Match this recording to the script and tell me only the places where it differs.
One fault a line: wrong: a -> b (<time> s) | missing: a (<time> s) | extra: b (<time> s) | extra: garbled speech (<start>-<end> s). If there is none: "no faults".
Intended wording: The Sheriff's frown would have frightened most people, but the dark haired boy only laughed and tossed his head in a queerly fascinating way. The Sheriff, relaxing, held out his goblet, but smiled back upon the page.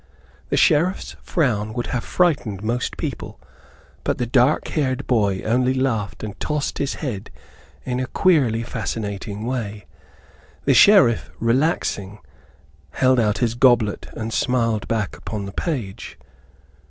wrong: but -> and (14.1 s)